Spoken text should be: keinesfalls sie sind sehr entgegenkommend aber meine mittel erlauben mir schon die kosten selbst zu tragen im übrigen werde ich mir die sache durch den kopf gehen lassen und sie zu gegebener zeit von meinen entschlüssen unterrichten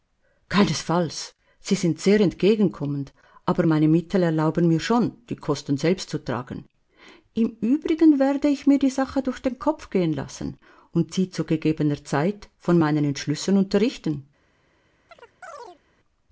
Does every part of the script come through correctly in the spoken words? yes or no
yes